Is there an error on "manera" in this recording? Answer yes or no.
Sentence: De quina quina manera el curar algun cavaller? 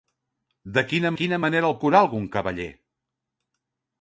no